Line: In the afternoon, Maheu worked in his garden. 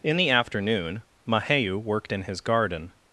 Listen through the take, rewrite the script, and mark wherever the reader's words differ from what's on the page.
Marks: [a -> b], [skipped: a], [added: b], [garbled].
In the afternoon, Maheu worked in his garden.